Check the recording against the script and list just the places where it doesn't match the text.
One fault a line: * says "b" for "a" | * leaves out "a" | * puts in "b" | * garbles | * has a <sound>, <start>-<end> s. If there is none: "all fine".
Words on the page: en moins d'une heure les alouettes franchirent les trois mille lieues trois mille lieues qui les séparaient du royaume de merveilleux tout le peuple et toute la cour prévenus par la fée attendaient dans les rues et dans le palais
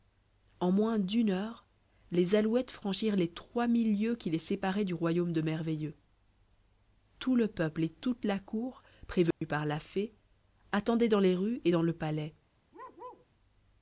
* leaves out "trois mille lieues"
* has a dropout, 9.3-9.4 s
* has a bark, 12.7-13.3 s